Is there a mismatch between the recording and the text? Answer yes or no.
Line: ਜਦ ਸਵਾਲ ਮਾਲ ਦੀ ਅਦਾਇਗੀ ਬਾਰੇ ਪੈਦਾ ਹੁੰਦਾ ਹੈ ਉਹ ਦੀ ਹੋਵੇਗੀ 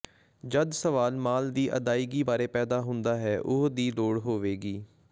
yes